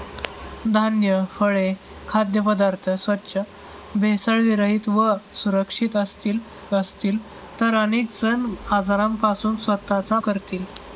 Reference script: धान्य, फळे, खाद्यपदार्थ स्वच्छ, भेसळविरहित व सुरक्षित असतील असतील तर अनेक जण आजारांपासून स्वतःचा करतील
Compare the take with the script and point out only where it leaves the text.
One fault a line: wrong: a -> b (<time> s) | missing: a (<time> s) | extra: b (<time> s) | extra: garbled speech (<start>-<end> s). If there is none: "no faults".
no faults